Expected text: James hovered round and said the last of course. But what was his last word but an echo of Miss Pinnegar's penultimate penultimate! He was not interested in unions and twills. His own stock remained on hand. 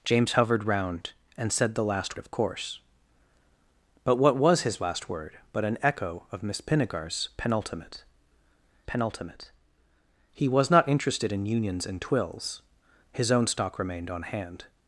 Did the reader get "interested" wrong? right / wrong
right